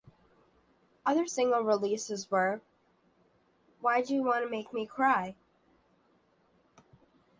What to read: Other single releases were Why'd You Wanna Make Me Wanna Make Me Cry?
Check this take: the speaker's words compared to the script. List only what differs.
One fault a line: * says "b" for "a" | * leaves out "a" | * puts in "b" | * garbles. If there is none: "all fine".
* leaves out "Wanna Make Me"